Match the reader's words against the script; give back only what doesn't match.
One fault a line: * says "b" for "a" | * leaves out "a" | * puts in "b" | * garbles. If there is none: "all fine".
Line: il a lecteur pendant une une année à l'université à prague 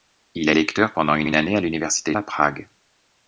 all fine